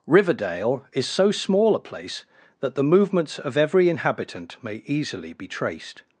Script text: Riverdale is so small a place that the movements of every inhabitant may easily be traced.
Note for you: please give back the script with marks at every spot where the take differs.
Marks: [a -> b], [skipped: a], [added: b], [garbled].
Riverdale is so small a place that the movements of every inhabitant may easily be traced.